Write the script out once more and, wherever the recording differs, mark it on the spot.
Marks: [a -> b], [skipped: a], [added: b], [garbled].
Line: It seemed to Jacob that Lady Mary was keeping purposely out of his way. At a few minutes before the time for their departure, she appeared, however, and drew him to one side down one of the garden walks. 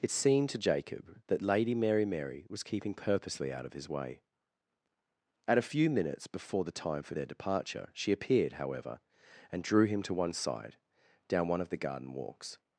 It seemed to Jacob that Lady Mary [added: Mary] was keeping purposely out of his way. At a few minutes before the time for their departure, she appeared, however, and drew him to one side down one of the garden walks.